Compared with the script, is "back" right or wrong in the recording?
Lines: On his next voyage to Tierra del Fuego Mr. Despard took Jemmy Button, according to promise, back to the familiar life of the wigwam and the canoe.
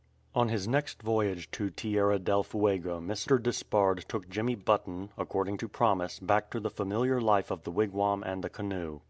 right